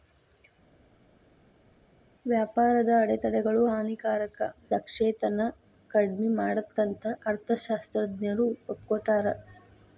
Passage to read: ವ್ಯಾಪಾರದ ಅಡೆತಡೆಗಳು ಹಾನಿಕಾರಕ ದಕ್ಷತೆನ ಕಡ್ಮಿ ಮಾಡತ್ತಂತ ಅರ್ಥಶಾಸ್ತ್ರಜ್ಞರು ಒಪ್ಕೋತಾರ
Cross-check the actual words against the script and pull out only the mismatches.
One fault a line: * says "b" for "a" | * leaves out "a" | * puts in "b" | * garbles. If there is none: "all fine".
all fine